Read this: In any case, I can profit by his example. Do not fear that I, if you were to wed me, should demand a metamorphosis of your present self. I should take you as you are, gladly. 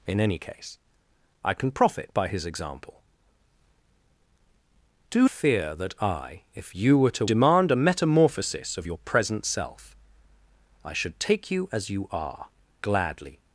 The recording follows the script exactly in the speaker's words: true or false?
false